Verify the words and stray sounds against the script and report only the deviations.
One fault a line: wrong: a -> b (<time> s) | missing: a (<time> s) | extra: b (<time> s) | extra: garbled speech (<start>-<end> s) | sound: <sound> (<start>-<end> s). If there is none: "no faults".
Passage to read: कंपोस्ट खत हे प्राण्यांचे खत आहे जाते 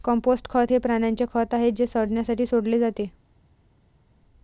extra: जे सडण्यासाठी सोडले (1.7 s)